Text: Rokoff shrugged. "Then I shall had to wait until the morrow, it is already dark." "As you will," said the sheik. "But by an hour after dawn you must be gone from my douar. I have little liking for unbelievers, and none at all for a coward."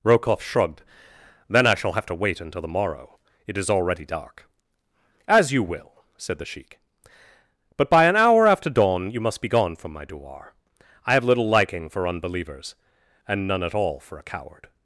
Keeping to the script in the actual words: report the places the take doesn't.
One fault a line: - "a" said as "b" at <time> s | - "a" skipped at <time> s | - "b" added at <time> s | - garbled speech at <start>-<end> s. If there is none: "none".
- "had" said as "have" at 1.9 s